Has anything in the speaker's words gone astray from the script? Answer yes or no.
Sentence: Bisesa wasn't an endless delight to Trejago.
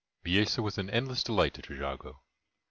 yes